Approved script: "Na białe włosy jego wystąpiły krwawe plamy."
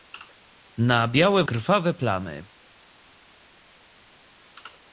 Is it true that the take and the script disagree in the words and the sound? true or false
true